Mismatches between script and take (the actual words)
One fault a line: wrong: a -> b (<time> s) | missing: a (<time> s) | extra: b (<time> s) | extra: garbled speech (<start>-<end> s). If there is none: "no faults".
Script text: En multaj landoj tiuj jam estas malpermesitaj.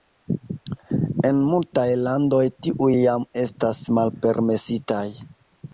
no faults